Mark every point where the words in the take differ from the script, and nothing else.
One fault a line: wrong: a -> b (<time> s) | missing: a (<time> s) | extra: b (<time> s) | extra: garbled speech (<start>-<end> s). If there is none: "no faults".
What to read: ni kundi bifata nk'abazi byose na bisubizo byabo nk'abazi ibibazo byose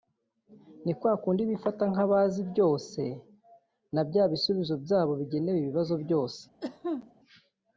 extra: kwa (1.0 s)
extra: bya (4.1 s)
wrong: nk'abazi -> bigenewe (5.2 s)